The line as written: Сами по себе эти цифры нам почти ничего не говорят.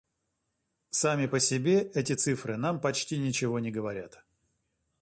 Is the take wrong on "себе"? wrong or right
right